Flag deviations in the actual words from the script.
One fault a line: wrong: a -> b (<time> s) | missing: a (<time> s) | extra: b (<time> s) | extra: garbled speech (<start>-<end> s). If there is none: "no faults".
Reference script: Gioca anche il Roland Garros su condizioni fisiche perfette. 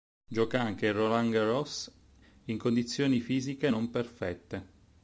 wrong: su -> in (2.5 s)
extra: non (3.7 s)